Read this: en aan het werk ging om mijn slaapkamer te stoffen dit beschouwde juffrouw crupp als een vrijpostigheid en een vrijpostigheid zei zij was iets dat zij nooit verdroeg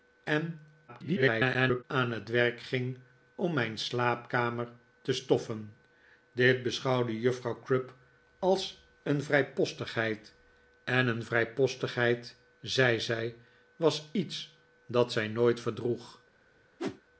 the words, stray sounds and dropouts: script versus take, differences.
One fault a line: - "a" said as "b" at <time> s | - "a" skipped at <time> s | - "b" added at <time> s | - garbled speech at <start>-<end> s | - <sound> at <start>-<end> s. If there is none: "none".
- garbled speech at 0.9-1.8 s
- whoosh at 16.8-17.0 s